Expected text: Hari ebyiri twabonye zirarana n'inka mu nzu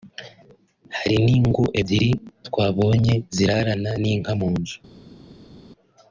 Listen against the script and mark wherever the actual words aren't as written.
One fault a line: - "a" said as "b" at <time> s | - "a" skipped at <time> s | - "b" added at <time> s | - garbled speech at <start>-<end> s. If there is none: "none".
- "n'ingo" added at 1.2 s